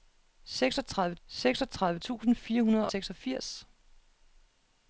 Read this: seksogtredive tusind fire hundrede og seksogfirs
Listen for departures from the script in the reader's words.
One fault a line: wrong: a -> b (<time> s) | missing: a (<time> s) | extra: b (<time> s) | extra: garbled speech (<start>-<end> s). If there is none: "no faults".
extra: seksogtredive (1.3 s)
missing: og (2.9 s)